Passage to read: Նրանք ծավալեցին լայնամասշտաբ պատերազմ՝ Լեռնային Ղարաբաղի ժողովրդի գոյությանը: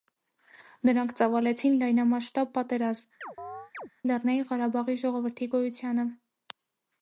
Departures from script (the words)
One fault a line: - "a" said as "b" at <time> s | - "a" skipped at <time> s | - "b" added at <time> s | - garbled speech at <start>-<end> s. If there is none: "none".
none